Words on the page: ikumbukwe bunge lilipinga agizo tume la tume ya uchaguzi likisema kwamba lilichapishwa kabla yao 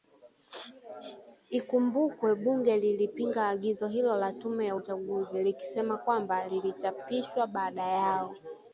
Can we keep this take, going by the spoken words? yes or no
no